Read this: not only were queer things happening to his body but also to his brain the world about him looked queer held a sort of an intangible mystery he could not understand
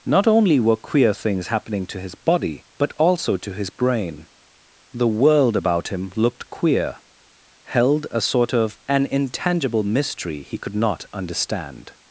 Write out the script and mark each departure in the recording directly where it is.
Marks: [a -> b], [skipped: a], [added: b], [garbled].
not only were queer things happening to his body but also to his brain the world about him looked queer held a sort of an intangible mystery he could not understand